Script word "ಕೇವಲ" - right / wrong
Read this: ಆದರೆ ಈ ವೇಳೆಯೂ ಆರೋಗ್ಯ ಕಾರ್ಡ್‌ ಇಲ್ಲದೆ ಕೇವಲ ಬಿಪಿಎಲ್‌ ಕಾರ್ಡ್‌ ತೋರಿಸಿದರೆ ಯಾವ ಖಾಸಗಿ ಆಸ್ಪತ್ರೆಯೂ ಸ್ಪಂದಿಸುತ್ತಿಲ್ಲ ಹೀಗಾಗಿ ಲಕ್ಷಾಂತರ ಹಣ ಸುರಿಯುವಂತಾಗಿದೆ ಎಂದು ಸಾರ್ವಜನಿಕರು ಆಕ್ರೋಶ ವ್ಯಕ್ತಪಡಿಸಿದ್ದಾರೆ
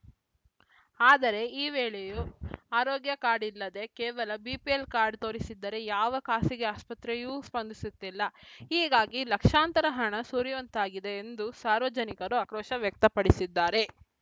right